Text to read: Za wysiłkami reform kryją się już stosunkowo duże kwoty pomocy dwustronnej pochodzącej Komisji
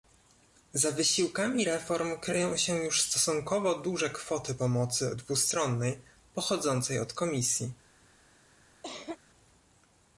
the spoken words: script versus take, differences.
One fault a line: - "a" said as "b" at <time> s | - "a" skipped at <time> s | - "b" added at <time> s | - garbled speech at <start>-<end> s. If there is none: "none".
- "od" added at 7.0 s